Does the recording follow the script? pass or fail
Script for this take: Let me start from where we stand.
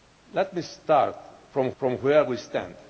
fail